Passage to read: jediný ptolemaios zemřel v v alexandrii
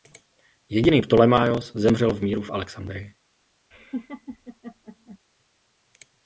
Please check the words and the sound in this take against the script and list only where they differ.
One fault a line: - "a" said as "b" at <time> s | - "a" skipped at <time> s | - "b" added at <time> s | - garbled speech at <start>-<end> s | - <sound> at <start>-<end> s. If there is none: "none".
- "míru" added at 2.2 s
- laugh at 3.7-5.2 s